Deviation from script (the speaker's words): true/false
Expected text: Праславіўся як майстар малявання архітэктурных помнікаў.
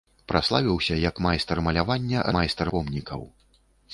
true